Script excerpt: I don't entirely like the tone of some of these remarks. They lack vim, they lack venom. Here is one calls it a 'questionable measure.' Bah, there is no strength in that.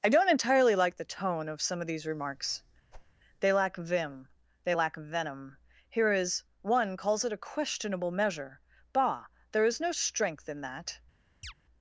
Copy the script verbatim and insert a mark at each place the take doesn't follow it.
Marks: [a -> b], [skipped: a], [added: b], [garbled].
I don't entirely like the tone of some of these remarks. They lack vim, they lack venom. Here is one calls it a 'questionable measure.' Bah, there is no strength in that.